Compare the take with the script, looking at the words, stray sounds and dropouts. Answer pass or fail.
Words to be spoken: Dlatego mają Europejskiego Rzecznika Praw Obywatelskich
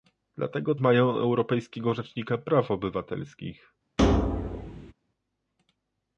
fail